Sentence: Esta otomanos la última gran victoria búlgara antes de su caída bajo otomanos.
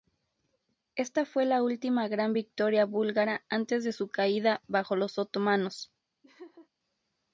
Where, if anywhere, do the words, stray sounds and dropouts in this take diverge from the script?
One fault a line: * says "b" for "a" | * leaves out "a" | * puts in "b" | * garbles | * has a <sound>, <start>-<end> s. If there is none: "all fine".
* says "fue" for "otomanos"
* puts in "los"
* has a laugh, 6.2-6.7 s